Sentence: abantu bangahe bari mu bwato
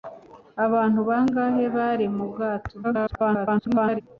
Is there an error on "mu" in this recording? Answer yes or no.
no